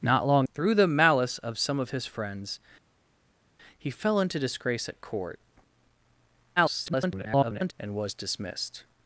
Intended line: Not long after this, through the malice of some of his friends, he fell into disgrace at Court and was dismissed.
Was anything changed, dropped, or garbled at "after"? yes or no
yes